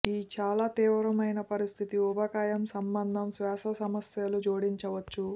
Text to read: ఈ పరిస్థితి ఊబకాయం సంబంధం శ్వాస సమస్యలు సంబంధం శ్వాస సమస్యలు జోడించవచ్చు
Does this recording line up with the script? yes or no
no